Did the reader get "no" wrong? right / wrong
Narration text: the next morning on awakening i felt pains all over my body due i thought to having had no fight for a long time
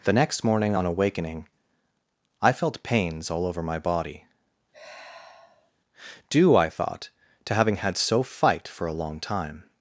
wrong